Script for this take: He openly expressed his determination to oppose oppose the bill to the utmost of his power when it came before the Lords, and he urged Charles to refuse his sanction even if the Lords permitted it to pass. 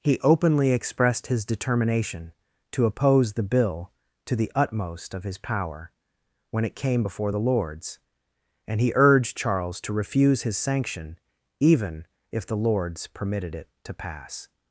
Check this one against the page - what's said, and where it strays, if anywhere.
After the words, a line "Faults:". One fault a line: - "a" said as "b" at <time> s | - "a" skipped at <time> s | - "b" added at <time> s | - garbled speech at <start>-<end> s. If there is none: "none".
He openly expressed his determination to oppose the bill to the utmost of his power when it came before the Lords, and he urged Charles to refuse his sanction even if the Lords permitted it to pass.
Faults:
- "oppose" skipped at 3.3 s